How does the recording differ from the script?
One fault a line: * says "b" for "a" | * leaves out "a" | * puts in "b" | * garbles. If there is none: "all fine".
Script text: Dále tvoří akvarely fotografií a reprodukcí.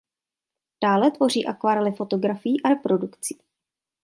all fine